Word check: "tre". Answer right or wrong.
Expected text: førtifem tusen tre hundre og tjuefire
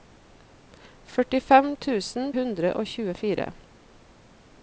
wrong